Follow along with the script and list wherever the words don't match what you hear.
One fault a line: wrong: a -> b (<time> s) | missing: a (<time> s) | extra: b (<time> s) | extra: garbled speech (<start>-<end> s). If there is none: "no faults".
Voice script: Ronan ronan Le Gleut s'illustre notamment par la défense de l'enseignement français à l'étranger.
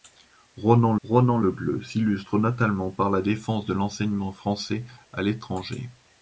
no faults